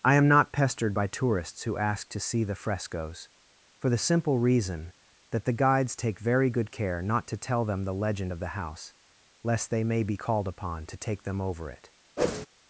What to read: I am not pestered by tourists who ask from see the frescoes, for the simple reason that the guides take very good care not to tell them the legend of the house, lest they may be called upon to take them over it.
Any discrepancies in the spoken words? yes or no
yes